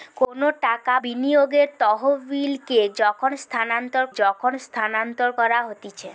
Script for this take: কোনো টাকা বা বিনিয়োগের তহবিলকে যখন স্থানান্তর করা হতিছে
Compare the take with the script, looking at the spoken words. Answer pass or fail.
fail